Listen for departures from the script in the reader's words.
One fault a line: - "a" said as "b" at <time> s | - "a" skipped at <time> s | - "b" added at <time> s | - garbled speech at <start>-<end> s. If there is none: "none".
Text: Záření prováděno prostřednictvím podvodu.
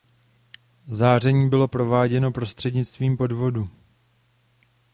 - "bylo" added at 1.5 s